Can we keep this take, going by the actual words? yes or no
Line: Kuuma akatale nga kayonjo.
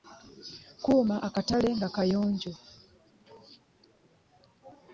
yes